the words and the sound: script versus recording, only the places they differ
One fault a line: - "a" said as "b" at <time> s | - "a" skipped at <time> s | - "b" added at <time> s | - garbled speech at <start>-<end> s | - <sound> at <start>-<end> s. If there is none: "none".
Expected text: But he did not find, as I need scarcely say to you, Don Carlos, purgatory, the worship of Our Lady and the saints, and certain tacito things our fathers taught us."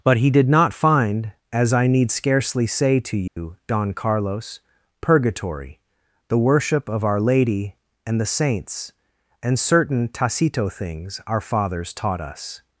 - dropout at 3.3-3.4 s